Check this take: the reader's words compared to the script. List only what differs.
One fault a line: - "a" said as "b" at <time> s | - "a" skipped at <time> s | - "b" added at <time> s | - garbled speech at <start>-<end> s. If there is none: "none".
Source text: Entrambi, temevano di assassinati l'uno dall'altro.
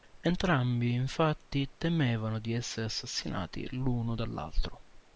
- "infatti" added at 0.9 s
- "essere" added at 2.5 s